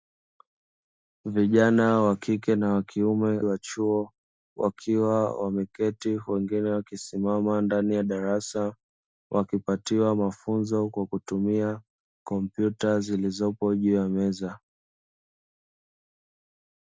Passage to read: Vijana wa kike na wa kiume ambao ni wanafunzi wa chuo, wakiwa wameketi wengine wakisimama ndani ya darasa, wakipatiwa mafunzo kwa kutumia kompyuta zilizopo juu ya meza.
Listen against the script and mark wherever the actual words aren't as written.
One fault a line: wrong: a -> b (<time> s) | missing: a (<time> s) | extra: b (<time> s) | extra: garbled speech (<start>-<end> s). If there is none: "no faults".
missing: ambao ni wanafunzi (3.4 s)